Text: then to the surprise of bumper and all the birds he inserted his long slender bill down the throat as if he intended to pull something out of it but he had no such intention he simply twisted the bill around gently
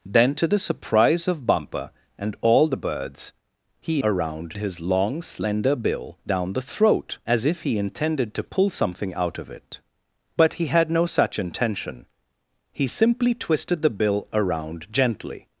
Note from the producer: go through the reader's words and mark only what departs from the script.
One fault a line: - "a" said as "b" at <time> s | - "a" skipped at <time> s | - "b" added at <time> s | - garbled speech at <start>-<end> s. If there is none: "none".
- "inserted" said as "around" at 4.0 s